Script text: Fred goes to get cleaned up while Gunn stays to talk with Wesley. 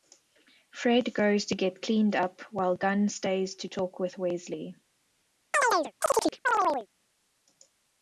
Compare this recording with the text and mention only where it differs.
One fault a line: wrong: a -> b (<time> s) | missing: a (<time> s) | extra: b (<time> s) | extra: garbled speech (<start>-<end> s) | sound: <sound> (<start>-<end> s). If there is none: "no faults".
sound: chirp (5.5-6.9 s)